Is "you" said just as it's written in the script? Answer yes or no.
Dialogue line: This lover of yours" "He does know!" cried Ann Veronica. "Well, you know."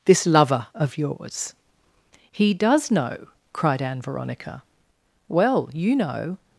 yes